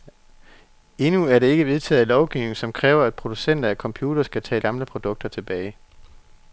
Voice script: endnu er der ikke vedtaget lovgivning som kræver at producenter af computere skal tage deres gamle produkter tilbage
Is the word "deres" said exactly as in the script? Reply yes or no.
no